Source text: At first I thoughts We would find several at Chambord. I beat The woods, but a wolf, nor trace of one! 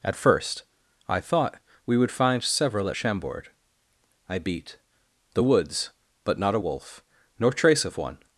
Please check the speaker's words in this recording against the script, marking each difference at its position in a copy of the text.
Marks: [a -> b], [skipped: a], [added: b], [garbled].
At first I [thoughts -> thought] We would find several at Chambord. I beat The woods, but [added: not] a wolf, nor trace of one!